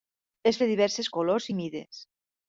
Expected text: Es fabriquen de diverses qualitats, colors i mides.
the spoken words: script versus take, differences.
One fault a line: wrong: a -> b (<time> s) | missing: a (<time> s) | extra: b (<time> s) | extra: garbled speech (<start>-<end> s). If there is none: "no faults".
missing: fabriquen (0.6 s)
missing: qualitats (1.1 s)